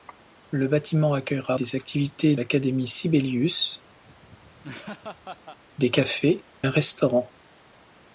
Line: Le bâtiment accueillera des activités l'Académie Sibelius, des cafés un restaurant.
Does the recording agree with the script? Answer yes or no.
yes